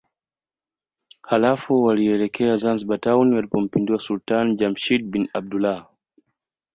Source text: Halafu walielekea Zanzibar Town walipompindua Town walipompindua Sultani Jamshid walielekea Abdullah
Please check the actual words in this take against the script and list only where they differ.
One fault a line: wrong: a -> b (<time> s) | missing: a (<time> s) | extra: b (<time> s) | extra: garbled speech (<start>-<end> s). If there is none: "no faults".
missing: Town walipompindua (4.0 s)
wrong: walielekea -> bin (5.1 s)